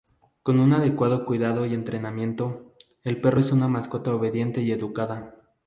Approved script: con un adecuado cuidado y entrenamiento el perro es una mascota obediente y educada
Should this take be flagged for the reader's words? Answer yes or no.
no